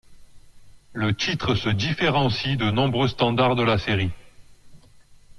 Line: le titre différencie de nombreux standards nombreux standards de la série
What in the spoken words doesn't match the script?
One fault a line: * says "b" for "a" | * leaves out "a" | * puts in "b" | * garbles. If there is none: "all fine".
* puts in "se"
* leaves out "nombreux standards"